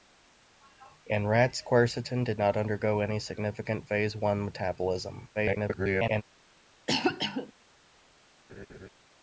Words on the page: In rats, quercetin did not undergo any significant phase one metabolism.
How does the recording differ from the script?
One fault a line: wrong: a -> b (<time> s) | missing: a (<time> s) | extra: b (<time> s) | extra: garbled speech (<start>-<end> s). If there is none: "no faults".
extra: garbled speech (5.3-6.2 s)